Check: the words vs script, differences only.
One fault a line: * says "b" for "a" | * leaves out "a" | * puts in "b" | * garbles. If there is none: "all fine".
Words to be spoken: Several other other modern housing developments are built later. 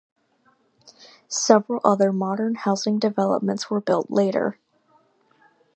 * leaves out "other"
* says "were" for "are"